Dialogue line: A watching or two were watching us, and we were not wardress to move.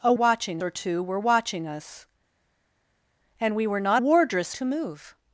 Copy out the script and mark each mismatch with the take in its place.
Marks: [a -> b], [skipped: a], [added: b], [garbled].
A watching or two were watching us, and we were not wardress to move.